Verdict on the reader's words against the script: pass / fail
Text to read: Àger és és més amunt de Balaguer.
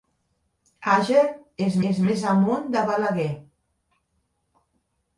pass